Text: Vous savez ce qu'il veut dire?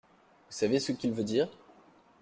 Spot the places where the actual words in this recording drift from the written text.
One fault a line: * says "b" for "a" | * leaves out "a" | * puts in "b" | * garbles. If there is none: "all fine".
all fine